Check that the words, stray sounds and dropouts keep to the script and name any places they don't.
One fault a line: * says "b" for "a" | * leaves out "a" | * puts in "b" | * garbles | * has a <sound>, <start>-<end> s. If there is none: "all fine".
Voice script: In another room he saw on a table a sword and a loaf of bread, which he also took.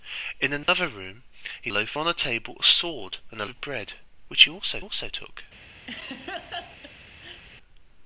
* has a dropout, 0.6-0.7 s
* says "loaf" for "saw"
* leaves out "loaf"
* puts in "also"
* has a laugh, 5.9-7.4 s